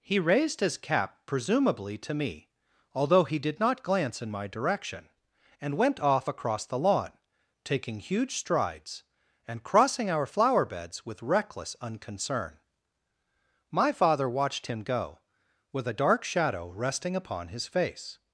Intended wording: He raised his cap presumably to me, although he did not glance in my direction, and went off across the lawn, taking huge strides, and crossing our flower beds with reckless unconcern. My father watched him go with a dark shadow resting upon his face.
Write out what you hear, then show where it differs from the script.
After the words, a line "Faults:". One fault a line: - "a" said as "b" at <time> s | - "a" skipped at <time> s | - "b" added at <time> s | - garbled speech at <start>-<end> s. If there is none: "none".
He raised his cap presumably to me, although he did not glance in my direction, and went off across the lawn, taking huge strides, and crossing our flower beds with reckless unconcern. My father watched him go with a dark shadow resting upon his face.
Faults:
none